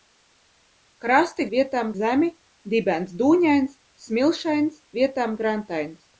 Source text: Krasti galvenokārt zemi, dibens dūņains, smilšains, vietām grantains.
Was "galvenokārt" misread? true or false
true